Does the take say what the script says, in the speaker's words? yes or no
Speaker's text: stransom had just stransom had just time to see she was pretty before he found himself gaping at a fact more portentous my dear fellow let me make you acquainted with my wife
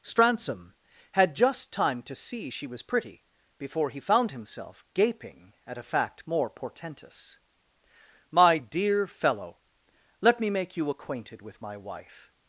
no